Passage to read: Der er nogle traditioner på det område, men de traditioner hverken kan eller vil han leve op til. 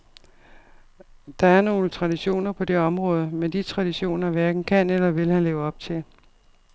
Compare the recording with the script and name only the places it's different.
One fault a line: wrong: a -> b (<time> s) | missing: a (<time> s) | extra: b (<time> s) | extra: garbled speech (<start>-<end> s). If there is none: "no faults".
no faults